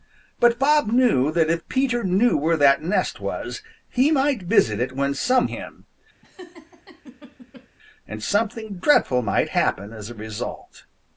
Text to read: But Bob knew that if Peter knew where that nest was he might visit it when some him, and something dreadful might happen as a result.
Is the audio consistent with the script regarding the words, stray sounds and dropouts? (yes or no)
no